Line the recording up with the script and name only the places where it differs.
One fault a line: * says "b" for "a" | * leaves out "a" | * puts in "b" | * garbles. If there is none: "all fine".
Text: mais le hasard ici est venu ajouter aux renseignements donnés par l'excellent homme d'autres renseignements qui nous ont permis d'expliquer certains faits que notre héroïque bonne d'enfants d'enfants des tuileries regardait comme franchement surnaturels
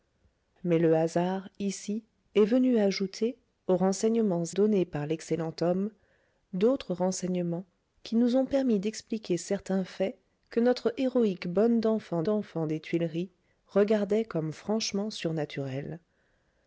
all fine